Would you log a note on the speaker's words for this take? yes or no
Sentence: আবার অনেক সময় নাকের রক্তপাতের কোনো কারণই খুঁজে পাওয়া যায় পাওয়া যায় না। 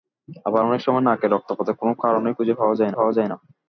no